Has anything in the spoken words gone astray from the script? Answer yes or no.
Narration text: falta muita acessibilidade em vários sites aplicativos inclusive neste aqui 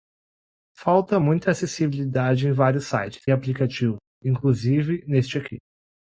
no